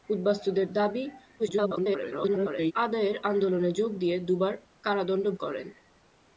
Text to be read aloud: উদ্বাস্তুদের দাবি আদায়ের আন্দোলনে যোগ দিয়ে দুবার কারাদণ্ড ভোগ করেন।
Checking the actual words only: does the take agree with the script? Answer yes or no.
no